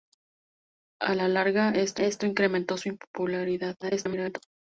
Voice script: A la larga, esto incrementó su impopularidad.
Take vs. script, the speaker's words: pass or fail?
fail